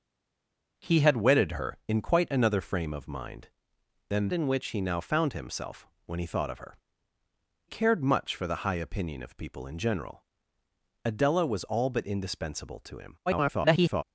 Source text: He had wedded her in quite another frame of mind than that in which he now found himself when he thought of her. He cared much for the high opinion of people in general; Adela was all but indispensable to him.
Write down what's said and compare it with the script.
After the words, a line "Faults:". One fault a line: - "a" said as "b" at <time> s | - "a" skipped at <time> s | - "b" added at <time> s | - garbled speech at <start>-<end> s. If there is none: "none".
He had wedded her in quite another frame of mind than in which he now found himself when he thought of her. Cared much for the high opinion of people in general; Adela was all but indispensable to him. [garbled]
Faults:
- "that" skipped at 4.3 s
- "He" skipped at 6.8 s
- garbled speech at 13.3-14.0 s